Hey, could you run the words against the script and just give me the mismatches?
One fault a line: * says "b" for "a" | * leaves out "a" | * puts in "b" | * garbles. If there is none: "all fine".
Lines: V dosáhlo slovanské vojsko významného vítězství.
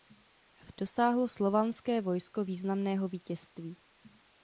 all fine